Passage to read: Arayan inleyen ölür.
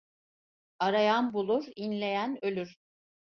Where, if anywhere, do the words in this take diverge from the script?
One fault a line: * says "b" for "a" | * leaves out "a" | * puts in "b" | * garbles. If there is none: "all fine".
* puts in "bulur"